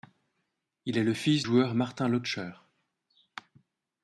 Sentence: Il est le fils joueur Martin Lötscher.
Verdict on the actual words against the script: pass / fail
pass